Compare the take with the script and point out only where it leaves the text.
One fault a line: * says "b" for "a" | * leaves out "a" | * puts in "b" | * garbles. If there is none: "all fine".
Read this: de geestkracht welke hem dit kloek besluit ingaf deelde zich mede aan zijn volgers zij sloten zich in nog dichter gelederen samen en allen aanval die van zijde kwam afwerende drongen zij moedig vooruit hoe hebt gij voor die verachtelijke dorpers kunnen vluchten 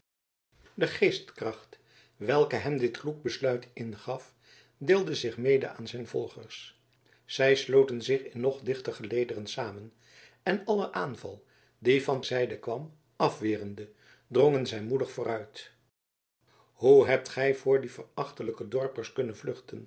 all fine